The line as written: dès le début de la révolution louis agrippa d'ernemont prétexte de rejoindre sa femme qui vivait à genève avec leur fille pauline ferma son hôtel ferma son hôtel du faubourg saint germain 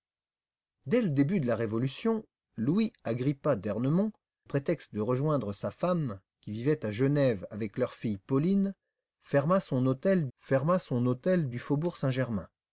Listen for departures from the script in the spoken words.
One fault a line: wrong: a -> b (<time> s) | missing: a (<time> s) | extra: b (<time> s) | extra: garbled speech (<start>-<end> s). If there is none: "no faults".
no faults